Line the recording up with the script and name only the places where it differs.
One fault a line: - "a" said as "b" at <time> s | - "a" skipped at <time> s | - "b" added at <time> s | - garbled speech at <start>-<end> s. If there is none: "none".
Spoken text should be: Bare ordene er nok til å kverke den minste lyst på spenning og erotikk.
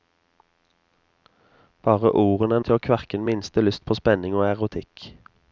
- "nok" skipped at 2.6 s